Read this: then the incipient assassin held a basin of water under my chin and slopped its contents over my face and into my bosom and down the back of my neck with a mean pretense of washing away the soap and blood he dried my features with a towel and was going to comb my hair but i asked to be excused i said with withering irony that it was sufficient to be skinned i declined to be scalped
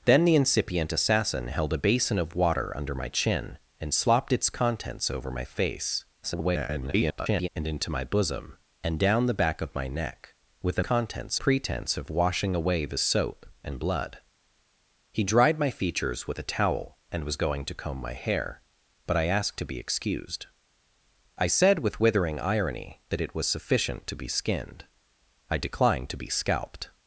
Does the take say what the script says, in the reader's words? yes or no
no